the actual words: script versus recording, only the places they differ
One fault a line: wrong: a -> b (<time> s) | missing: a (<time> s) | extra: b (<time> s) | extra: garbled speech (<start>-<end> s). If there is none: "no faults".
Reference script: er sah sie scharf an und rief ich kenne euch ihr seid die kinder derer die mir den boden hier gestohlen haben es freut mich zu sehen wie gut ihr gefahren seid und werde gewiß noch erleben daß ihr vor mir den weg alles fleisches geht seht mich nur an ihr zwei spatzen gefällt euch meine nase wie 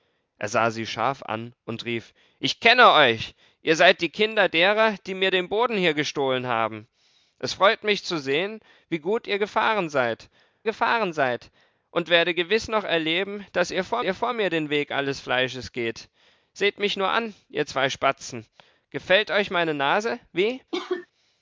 extra: gefahren seid (10.6 s)
extra: ihr vor (14.0 s)